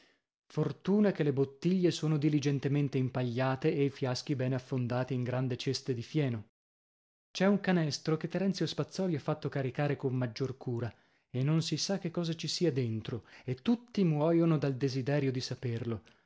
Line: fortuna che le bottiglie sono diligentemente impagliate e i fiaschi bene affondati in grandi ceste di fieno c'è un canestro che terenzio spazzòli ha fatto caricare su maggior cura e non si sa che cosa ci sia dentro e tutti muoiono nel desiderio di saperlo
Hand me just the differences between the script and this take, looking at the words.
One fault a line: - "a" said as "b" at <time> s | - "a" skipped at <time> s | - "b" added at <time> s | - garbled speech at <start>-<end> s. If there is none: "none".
- "su" said as "con" at 9.9 s
- "nel" said as "dal" at 14.6 s